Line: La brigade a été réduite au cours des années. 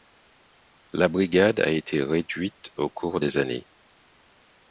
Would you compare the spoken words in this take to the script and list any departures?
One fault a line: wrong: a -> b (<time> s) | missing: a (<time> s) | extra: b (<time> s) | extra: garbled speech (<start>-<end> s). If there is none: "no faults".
no faults